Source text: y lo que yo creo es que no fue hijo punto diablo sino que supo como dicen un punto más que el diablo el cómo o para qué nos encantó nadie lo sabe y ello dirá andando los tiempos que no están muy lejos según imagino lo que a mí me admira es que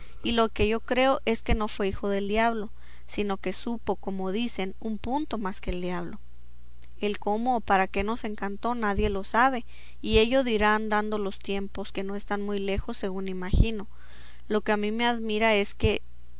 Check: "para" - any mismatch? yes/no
no